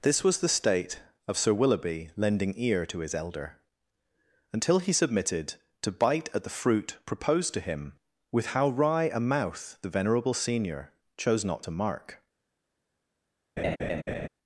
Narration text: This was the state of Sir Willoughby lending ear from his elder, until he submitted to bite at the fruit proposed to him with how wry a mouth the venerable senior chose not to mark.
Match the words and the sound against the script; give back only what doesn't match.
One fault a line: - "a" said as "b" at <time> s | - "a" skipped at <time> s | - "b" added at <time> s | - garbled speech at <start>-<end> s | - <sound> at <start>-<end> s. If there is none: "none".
- "from" said as "to" at 2.9 s
- laugh at 13.6-14.3 s